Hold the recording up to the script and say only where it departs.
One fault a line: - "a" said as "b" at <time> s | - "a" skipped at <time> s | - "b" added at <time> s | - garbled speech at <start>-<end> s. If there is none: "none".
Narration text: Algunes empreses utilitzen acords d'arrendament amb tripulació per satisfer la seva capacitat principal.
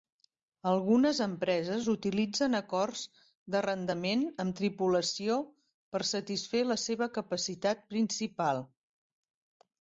none